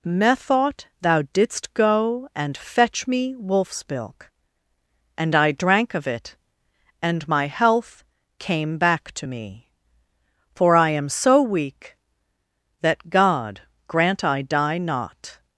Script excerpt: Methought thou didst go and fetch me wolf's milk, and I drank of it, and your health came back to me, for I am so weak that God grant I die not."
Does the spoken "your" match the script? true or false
false